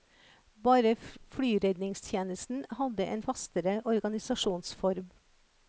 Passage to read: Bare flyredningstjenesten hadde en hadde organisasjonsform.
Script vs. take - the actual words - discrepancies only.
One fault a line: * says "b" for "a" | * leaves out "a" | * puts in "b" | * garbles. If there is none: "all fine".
* says "fastere" for "hadde"